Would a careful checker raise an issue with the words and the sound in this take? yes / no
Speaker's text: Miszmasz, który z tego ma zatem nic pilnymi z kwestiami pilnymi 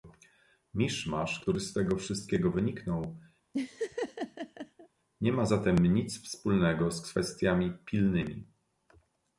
yes